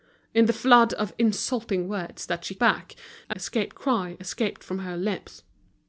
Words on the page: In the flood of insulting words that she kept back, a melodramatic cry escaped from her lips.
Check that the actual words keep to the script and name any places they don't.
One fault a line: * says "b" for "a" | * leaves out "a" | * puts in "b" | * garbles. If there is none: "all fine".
* leaves out "kept"
* says "escaped" for "melodramatic"